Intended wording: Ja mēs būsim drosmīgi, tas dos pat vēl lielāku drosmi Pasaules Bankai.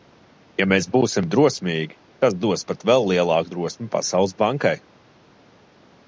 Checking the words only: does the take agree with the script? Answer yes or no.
yes